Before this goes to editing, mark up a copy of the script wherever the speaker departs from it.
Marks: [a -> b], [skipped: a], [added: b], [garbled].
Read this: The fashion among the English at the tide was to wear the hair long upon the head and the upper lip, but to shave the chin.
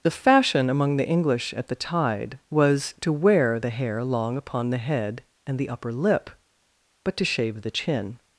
The fashion among the English at the tide was to wear the hair long upon the head and the upper lip, but to shave the chin.